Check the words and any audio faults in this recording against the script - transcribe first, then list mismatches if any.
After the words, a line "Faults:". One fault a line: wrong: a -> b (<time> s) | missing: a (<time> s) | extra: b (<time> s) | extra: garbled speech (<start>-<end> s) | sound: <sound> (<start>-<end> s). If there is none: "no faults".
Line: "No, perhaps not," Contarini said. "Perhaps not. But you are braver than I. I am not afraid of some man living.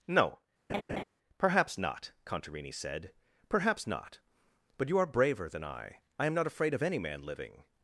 "No, perhaps not," Contarini said. "Perhaps not. But you are braver than I. I am not afraid of any man living.
Faults:
sound: laugh (0.7-1.0 s)
wrong: some -> any (6.8 s)